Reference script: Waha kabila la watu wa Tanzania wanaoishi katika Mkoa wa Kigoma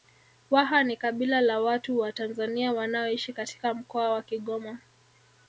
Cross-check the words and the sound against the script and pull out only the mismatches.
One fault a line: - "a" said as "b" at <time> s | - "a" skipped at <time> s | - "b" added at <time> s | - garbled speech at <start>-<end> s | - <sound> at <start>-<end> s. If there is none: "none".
- "ni" added at 0.8 s